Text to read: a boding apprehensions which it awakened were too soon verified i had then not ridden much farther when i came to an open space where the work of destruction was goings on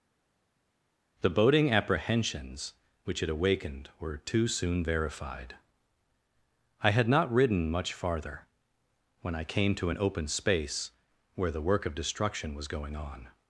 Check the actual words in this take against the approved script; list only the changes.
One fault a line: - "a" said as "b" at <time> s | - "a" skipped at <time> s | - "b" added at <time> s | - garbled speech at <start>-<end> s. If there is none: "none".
- "a" said as "the" at 1.2 s
- "then" skipped at 7.1 s
- "goings" said as "going" at 12.7 s